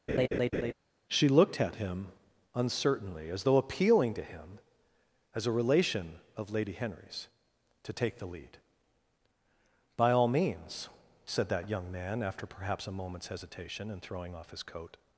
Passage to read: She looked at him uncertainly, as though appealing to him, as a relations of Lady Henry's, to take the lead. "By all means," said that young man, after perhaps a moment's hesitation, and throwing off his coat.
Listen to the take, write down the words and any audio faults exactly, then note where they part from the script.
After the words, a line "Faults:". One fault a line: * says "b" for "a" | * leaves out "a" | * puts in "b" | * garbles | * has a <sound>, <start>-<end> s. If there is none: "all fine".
She looked at him uncertainly, as though appealing to him, as a relation of Lady Henry's, to take the lead. "By all means," said that young man, after perhaps a moment's hesitation, and throwing off his coat.
Faults:
* has a laugh, 0.1-0.7 s
* says "relation" for "relations"